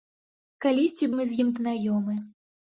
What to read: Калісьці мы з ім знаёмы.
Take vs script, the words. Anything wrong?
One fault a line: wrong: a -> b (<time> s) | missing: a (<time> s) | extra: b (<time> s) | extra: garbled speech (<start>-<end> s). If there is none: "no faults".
no faults